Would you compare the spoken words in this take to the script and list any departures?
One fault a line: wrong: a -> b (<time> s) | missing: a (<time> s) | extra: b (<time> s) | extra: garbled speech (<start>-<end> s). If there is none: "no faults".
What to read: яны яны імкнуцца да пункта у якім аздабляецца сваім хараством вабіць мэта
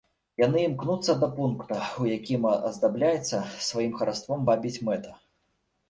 missing: яны (0.6 s)